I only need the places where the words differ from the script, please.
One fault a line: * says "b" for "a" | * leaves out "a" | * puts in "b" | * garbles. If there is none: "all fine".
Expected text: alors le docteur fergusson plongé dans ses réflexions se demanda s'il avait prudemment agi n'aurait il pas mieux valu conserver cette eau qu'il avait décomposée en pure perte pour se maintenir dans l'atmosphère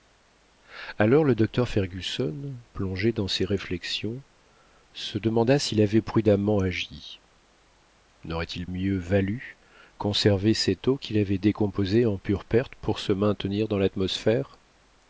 * leaves out "pas"